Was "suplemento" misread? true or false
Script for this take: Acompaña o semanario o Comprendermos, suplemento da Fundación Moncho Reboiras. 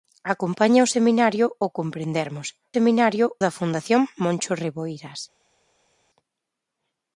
true